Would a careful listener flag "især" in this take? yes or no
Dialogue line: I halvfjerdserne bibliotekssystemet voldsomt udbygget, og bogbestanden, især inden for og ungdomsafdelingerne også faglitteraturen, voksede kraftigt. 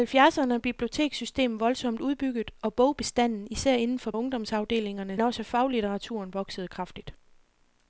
no